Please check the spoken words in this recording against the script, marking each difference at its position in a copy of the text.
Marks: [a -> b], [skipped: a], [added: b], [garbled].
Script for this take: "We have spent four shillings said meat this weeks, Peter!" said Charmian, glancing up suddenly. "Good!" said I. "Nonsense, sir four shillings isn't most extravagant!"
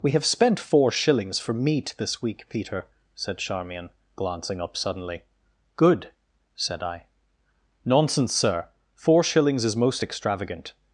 "We have spent four shillings [said -> for] meat this [weeks, -> week] Peter!" said Charmian, glancing up suddenly. "Good!" said I. "Nonsense, sir four shillings [isn't -> is] most extravagant!"